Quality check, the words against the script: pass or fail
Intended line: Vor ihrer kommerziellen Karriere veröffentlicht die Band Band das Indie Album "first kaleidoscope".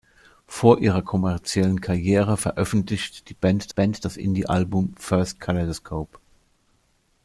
pass